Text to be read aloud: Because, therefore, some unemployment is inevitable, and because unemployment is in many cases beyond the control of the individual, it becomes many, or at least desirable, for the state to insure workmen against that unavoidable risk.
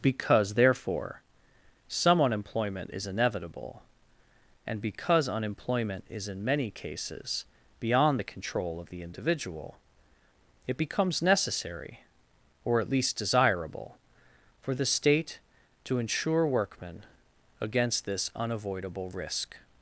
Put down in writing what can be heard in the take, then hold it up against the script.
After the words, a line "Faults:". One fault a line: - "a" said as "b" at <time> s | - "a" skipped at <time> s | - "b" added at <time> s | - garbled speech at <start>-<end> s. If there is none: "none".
Because, therefore, some unemployment is inevitable, and because unemployment is in many cases beyond the control of the individual, it becomes necessary, or at least desirable, for the state to insure workmen against this unavoidable risk.
Faults:
- "many" said as "necessary" at 11.2 s
- "that" said as "this" at 18.1 s